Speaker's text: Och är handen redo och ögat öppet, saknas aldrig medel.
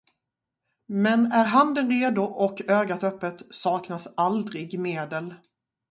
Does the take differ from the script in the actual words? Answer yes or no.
yes